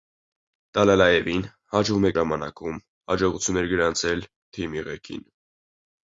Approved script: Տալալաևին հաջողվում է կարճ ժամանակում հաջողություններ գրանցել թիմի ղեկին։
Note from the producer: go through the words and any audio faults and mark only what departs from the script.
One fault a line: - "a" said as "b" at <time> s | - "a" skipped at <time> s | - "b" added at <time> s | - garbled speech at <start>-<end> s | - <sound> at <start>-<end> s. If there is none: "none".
- "կարճ" skipped at 2.1 s